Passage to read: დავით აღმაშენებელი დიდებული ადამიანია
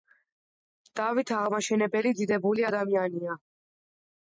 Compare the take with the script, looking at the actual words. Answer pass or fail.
pass